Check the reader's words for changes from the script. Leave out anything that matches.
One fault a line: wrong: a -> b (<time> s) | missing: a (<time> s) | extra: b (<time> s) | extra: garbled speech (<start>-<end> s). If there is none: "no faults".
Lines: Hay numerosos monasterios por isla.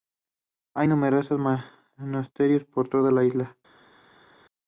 extra: toda la (2.9 s)